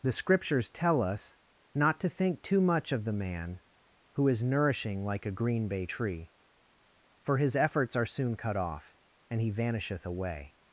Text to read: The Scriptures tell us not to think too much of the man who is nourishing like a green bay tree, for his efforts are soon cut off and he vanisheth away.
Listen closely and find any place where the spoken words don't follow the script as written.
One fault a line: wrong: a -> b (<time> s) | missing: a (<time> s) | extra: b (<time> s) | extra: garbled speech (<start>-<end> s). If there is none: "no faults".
no faults